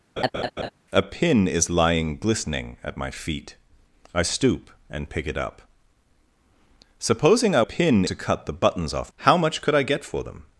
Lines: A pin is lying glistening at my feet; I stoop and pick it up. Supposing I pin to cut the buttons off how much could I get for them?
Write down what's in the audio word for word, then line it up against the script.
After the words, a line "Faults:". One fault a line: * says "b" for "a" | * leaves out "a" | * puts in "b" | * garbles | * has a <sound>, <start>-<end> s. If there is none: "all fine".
A pin is lying glistening at my feet; I stoop and pick it up. Supposing I pin to cut the buttons off how much could I get for them?
Faults:
* has a laugh, 0.2-0.7 s